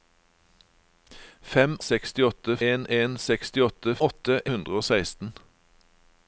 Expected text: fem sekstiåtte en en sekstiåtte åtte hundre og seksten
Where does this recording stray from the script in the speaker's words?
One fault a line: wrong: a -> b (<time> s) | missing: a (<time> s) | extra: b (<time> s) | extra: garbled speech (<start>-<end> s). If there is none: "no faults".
no faults